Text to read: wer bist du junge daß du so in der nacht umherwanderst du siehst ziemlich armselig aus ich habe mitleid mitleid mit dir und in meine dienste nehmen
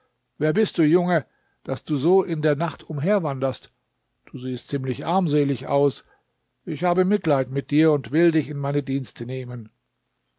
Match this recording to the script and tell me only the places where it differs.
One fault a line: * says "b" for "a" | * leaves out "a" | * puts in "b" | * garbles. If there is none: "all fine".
* leaves out "mitleid"
* puts in "will dich"